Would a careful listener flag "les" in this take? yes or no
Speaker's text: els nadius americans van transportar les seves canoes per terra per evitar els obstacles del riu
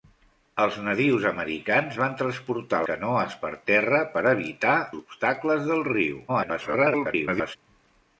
yes